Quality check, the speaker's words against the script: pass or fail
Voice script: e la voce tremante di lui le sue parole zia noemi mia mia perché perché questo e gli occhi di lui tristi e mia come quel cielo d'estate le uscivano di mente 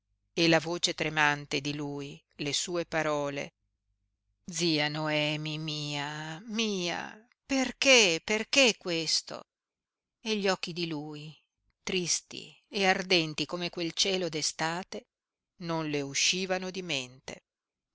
fail